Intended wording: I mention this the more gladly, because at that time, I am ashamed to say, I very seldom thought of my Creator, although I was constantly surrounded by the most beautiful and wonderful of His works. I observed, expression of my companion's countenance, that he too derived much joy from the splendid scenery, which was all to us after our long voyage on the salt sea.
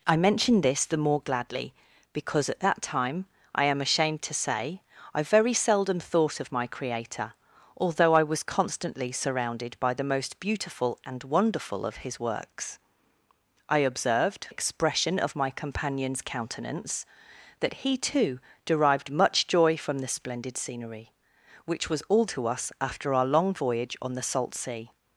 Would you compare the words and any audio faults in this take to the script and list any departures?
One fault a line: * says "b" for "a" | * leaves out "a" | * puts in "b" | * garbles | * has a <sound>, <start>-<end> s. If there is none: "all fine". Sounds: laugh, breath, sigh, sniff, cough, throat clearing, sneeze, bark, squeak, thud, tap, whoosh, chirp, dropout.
all fine